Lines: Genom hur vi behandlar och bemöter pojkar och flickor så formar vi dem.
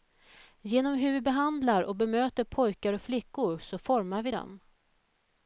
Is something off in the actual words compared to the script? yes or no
no